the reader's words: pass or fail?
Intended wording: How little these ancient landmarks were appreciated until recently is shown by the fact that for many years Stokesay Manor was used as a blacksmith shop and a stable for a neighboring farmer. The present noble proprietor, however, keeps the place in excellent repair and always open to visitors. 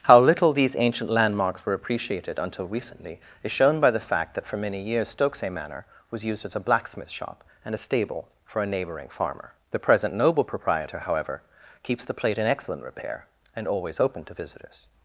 fail